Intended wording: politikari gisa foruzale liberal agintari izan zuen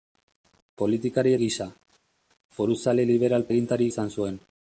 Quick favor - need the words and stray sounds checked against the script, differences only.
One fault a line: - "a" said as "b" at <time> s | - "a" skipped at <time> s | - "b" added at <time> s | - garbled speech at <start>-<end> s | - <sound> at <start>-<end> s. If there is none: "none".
none